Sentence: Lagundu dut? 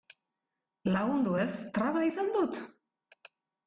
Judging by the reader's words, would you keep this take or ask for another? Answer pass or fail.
fail